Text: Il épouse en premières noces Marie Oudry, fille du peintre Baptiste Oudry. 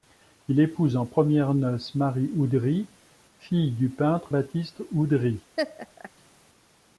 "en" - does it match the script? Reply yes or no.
yes